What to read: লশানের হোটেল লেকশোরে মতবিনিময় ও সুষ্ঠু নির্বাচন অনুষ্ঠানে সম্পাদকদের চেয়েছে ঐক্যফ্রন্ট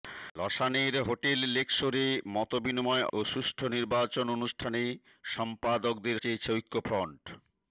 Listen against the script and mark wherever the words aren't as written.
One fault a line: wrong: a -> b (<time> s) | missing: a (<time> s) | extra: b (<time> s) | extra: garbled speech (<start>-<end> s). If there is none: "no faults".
no faults